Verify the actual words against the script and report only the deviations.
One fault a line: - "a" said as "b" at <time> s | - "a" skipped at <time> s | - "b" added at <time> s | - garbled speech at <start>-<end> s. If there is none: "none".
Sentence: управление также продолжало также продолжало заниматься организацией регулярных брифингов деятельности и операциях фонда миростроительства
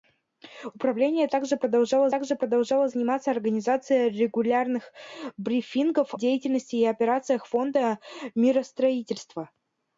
none